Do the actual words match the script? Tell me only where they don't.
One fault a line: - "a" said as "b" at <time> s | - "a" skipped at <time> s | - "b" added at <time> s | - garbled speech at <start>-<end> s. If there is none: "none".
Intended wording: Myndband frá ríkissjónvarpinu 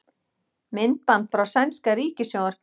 - "sænska" added at 1.5 s